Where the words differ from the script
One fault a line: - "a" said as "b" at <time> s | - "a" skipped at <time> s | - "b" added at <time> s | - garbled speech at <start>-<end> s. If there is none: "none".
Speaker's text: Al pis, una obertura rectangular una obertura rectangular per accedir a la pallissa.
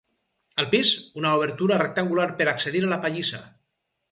- "una obertura rectangular" skipped at 2.3 s